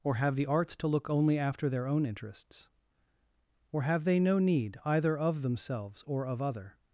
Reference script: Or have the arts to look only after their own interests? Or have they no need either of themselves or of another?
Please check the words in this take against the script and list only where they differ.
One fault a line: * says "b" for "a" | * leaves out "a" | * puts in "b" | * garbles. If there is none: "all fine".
* says "other" for "another"